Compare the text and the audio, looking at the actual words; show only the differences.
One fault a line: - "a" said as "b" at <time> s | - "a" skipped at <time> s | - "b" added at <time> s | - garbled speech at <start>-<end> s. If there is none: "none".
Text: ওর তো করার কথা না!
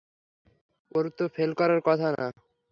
- "ফেল" added at 1.4 s